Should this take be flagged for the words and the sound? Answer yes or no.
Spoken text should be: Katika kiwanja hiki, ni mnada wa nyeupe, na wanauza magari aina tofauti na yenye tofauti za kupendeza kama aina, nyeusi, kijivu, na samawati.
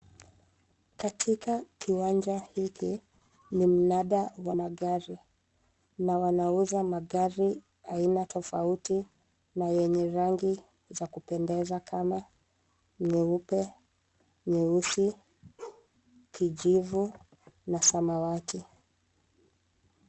yes